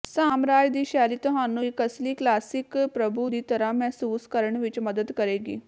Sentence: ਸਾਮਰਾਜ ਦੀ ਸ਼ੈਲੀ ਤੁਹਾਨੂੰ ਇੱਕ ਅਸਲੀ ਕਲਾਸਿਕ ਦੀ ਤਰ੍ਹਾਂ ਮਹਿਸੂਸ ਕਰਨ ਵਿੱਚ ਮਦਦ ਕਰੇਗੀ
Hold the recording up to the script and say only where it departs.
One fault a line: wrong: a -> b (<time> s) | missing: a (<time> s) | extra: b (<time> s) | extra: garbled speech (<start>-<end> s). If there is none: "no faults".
extra: ਪ੍ਰਭੂ (2.9 s)